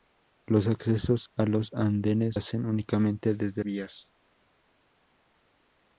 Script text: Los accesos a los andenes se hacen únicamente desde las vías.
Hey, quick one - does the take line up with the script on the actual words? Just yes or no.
no